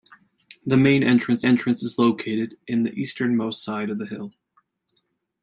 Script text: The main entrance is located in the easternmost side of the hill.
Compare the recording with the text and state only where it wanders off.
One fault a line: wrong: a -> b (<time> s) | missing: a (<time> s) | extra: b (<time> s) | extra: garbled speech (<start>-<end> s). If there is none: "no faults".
extra: entrance (1.4 s)